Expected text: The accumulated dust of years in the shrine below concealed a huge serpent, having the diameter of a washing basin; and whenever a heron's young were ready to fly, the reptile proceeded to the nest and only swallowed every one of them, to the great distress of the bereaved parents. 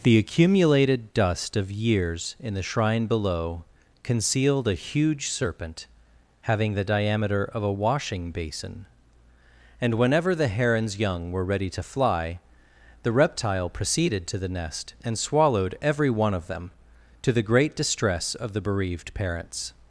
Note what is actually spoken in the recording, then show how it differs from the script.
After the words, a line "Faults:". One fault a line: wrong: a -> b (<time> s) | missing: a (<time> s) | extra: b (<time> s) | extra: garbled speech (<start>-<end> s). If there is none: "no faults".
The accumulated dust of years in the shrine below concealed a huge serpent, having the diameter of a washing basin; and whenever the heron's young were ready to fly, the reptile proceeded to the nest and swallowed every one of them, to the great distress of the bereaved parents.
Faults:
wrong: a -> the (10.3 s)
missing: only (15.2 s)